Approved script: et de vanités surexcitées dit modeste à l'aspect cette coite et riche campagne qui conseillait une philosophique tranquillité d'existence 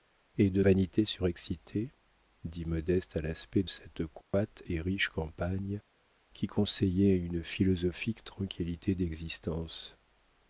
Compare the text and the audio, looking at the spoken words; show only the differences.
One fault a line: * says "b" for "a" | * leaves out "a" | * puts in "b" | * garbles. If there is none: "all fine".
all fine